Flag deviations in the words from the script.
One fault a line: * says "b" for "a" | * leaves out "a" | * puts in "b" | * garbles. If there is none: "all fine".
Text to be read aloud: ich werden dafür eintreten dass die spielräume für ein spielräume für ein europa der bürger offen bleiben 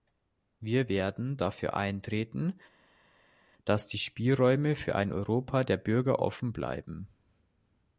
* says "wir" for "ich"
* leaves out "spielräume für ein"